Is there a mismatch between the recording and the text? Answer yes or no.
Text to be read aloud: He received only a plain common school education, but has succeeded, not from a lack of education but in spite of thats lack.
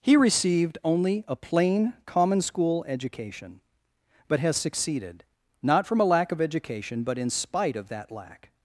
yes